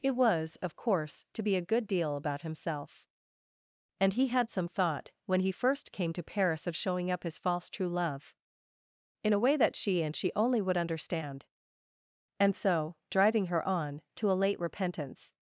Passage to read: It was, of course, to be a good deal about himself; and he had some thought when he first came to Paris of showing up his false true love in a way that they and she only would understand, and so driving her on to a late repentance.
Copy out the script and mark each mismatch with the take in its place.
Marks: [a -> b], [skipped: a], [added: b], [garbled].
It was, of course, to be a good deal about himself; and he had some thought when he first came to Paris of showing up his false true love in a way that [they -> she] and she only would understand, and so driving her on to a late repentance.